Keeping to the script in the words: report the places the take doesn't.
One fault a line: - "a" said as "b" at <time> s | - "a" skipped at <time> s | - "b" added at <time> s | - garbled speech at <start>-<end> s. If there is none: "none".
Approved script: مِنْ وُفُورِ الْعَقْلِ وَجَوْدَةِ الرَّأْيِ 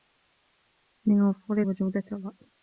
- "الْعَقْلِ" skipped at 1.6 s